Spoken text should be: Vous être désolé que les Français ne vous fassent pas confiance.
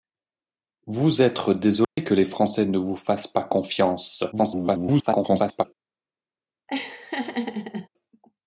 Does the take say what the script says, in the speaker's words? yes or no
no